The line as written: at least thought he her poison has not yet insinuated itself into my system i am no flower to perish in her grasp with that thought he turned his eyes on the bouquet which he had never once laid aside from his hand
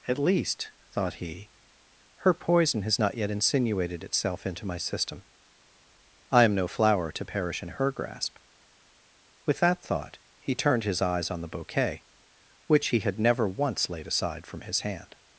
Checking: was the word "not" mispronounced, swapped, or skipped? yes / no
no